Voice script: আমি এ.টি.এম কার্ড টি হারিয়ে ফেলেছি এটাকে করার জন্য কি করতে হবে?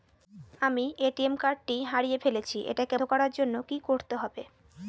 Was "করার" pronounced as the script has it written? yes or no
yes